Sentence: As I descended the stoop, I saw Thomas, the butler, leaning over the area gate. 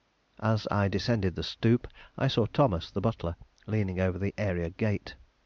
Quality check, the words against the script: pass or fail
pass